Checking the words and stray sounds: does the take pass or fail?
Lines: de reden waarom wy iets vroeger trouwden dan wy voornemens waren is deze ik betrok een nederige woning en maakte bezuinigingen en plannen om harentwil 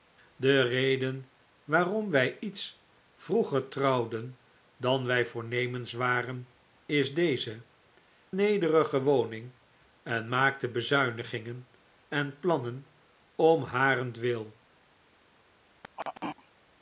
fail